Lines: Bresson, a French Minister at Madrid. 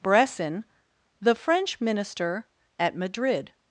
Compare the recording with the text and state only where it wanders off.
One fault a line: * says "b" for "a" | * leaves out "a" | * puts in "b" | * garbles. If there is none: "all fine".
* says "the" for "a"